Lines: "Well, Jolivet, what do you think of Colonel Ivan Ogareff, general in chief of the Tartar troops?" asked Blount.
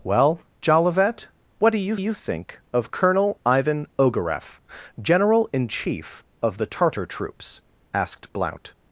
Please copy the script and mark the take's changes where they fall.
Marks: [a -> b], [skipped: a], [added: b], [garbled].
"Well, Jolivet, what do you [added: you] think of Colonel Ivan Ogareff, general in chief of the Tartar troops?" asked Blount.